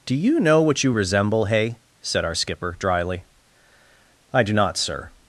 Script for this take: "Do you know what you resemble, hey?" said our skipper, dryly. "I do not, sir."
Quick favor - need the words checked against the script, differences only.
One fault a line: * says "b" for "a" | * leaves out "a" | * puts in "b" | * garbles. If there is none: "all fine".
all fine